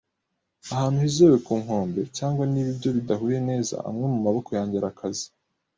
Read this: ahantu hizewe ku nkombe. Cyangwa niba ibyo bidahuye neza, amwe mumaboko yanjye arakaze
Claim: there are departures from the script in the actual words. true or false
false